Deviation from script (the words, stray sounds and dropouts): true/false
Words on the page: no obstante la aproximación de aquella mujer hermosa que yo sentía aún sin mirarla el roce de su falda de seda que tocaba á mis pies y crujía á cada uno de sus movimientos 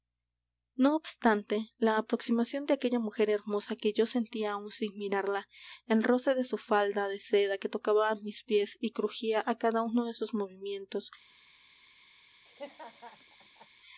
true